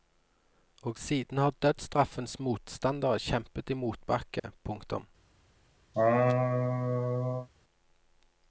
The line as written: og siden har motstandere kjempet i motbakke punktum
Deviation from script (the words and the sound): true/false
true